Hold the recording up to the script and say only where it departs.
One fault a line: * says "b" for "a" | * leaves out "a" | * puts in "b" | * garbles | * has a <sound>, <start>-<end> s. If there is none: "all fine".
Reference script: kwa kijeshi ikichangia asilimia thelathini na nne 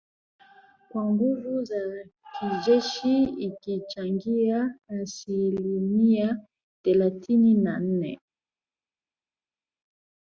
* puts in "nguvu za"